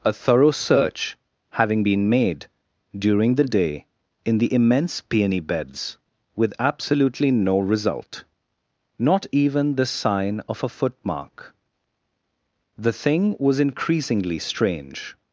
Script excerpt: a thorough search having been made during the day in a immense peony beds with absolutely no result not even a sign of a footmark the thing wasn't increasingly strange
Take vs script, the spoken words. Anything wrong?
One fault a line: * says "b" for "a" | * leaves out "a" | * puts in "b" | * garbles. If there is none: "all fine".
* says "the" for "a"
* says "the" for "a"
* says "was" for "wasn't"